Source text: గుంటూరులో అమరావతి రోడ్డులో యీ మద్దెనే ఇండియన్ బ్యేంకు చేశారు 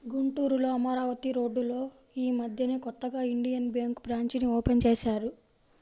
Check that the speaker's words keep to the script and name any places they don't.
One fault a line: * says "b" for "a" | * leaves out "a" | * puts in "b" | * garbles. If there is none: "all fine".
* puts in "కొత్తగా"
* puts in "బ్రాంచీని ఓపెన్"